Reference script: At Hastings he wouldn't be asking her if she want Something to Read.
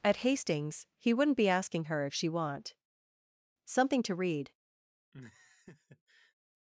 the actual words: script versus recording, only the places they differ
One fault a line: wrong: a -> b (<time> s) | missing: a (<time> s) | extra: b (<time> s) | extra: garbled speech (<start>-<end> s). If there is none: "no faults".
no faults